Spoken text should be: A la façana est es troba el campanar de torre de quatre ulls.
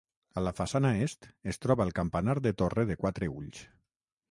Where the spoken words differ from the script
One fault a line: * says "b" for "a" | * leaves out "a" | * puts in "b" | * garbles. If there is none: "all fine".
all fine